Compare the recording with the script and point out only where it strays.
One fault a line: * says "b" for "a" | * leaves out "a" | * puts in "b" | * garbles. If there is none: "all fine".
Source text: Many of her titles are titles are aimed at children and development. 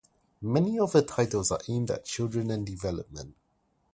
* leaves out "titles are"